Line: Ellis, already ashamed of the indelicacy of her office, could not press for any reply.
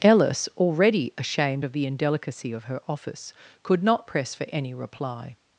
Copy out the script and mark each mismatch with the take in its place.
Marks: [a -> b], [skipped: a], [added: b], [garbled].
Ellis, already ashamed of the indelicacy of her office, could not press for any reply.